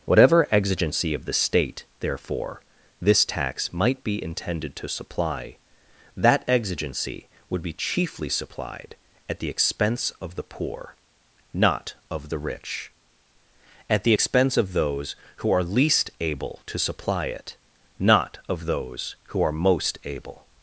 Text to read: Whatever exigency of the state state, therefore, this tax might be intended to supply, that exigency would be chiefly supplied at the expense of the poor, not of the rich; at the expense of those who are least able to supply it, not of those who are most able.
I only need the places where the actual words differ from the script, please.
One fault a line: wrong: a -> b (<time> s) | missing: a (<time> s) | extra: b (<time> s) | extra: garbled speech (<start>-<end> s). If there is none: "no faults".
missing: state (1.9 s)